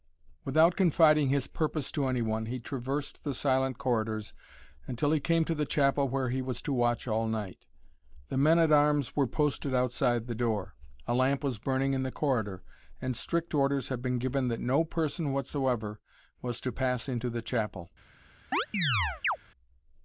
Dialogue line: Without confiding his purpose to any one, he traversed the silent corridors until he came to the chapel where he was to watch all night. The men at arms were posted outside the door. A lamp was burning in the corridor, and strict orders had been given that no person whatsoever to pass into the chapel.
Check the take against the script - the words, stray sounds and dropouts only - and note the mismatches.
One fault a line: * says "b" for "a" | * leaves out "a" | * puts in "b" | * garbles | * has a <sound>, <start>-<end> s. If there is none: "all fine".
* puts in "was"
* has a chirp, 18.5-19.4 s